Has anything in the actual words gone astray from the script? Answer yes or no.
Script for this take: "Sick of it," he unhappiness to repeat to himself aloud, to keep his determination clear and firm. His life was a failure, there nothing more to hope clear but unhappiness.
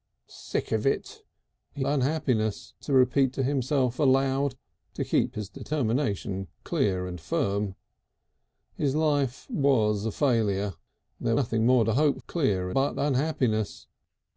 no